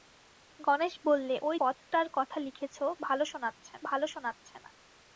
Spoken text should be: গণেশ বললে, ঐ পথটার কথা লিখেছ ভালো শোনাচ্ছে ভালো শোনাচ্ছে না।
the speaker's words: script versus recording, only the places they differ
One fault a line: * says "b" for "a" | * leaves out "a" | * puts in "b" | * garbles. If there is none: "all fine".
all fine